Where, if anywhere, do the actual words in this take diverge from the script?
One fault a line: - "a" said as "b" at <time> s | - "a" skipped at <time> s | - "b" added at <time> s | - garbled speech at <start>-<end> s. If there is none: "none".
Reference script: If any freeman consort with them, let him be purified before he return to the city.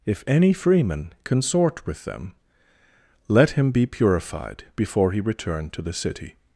none